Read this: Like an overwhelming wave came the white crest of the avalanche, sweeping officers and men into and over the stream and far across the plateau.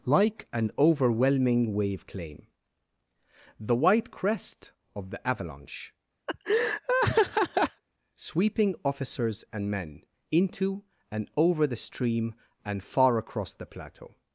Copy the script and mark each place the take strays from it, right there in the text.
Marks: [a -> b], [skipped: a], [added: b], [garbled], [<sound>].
Like an overwhelming wave [came -> claim] the white crest of the avalanche, [laugh] sweeping officers and men into and over the stream and far across the plateau.